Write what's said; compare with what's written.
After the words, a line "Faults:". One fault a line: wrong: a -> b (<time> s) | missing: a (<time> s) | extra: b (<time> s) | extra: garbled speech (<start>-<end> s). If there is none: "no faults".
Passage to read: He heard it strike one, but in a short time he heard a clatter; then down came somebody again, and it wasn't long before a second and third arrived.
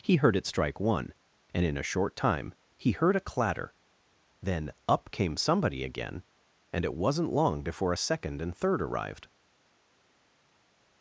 He heard it strike one, and in a short time he heard a clatter; then up came somebody again, and it wasn't long before a second and third arrived.
Faults:
wrong: but -> and (1.5 s)
wrong: down -> up (4.9 s)